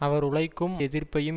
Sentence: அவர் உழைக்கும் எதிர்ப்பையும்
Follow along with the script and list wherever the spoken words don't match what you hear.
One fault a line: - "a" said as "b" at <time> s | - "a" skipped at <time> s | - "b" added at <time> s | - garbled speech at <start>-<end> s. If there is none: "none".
none